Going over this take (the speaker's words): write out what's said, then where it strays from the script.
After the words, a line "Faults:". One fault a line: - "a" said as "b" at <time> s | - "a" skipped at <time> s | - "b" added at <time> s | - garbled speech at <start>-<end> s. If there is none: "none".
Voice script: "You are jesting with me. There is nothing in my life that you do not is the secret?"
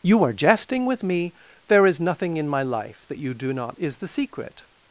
"You are jesting with me. There is nothing in my life that you do not is the secret?"
Faults:
none